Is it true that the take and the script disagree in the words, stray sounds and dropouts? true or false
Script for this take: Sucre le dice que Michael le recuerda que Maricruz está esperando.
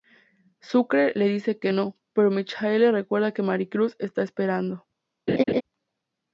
true